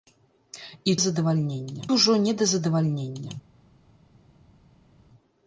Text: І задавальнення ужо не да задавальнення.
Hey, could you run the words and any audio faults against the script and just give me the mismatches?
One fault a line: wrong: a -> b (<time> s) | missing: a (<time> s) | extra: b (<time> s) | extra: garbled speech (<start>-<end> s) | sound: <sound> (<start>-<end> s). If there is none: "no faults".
no faults